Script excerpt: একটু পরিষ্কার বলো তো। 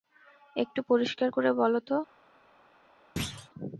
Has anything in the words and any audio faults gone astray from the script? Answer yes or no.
yes